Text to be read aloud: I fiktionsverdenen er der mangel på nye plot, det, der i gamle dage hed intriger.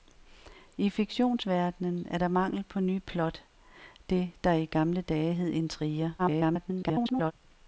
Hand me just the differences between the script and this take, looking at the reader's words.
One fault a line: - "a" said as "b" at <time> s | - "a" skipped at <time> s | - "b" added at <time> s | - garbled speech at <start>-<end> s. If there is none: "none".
- garbled speech at 6.2-7.3 s